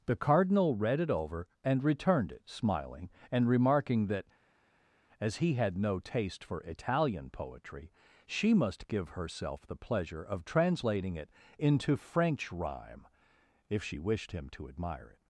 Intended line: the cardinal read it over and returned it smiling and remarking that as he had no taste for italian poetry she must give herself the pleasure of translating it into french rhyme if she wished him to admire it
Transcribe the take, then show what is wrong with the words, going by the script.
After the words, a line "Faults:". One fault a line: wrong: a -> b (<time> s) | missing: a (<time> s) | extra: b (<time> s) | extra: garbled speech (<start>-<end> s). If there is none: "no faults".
the cardinal read it over and returned it smiling and remarking that as he had no taste for italian poetry she must give herself the pleasure of translating it into french rhyme if she wished him to admire it
Faults:
no faults